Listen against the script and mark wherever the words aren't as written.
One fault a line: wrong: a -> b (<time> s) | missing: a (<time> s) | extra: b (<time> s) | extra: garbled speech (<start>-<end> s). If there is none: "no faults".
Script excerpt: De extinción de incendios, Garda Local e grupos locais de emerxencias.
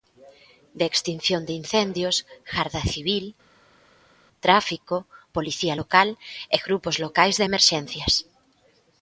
extra: Civil Tráfico Policía (2.9 s)